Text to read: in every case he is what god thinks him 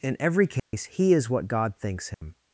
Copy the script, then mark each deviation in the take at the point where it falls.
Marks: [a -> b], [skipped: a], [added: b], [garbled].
in every case he is what god thinks him